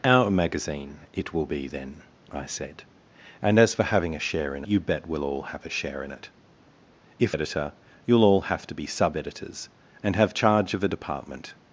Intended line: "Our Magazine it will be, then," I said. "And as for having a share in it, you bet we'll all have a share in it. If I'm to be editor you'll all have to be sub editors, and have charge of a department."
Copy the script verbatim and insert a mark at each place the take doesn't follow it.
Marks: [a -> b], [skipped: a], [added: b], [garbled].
"Our Magazine it will be, then," I said. "And as for having a share in [skipped: it,] you bet we'll all have a share in it. If [skipped: I'm to be] editor you'll all have to be sub editors, and have charge of a department."